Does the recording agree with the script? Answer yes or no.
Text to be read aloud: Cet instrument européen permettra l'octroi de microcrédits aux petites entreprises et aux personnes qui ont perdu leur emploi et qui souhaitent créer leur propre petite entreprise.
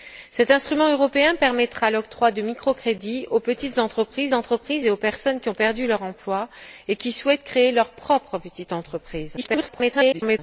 no